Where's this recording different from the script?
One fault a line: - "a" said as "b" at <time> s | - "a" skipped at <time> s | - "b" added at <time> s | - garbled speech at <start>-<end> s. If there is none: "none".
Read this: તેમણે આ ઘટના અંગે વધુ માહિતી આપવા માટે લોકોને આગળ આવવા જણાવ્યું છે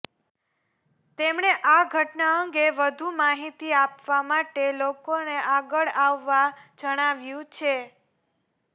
none